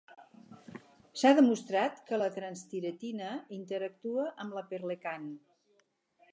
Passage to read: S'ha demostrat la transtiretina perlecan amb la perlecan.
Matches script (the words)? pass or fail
fail